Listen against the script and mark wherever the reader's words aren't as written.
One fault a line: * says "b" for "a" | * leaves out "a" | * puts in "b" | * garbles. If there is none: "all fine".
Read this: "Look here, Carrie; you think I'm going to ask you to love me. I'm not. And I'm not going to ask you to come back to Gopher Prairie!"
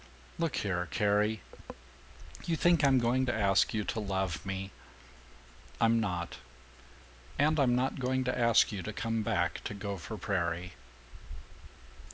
all fine